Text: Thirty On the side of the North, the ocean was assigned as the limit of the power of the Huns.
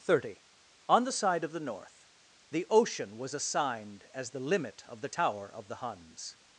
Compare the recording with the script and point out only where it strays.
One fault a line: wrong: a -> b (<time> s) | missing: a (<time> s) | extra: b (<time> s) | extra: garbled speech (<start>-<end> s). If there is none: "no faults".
wrong: power -> tower (5.1 s)